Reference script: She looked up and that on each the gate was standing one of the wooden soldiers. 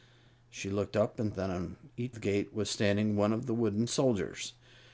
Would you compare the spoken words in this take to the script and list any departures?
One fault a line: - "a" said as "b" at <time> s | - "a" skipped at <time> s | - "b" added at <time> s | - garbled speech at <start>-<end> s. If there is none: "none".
none